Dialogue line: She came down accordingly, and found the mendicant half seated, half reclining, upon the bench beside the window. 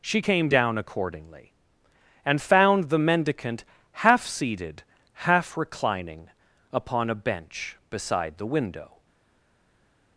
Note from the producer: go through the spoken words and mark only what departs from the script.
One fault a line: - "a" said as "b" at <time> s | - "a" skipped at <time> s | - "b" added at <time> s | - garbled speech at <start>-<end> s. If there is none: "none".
- "the" said as "a" at 7.1 s